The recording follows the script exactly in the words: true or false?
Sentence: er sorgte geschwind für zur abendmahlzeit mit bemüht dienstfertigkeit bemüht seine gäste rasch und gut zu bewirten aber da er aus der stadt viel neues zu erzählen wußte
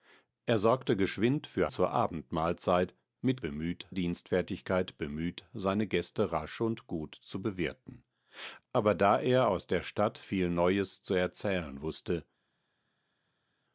true